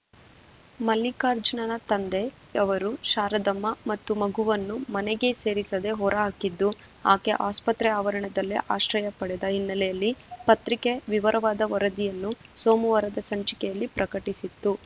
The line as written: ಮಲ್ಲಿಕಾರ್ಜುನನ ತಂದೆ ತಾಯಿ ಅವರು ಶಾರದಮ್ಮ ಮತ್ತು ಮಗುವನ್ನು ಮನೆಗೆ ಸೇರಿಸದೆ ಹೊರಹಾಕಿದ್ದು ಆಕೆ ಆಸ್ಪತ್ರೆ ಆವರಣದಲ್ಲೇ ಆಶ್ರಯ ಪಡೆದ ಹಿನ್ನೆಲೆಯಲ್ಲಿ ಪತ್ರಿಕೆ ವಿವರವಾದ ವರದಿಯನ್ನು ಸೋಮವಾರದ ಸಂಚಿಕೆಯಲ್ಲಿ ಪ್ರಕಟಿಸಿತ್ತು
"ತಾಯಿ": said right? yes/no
no